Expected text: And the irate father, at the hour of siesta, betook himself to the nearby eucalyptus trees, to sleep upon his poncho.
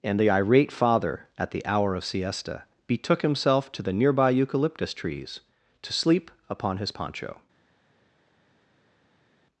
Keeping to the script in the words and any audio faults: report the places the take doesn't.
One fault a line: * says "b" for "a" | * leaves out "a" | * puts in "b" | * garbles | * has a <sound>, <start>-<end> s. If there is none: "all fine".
all fine